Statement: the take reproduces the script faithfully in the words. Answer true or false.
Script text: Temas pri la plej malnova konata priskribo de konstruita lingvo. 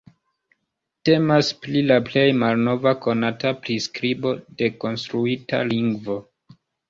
true